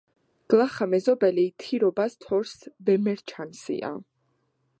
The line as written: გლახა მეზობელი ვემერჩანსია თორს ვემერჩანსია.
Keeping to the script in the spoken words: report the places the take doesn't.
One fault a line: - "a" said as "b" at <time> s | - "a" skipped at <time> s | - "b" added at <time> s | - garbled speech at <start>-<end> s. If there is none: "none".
- "ვემერჩანსია" said as "თირობას" at 1.6 s